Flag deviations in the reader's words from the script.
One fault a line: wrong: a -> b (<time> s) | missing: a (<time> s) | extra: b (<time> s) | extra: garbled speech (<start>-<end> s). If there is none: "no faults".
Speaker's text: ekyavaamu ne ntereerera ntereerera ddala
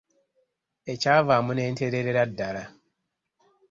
missing: ntereerera (2.2 s)